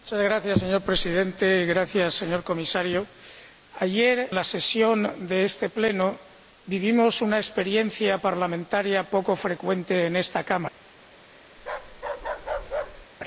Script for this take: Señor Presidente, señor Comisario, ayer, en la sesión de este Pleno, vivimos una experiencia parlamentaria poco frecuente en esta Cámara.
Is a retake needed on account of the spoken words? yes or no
yes